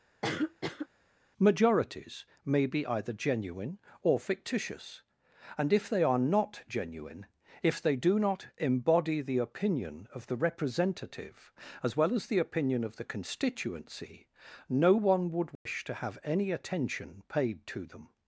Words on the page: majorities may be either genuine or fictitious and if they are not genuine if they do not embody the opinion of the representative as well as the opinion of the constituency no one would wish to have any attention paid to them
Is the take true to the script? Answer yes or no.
yes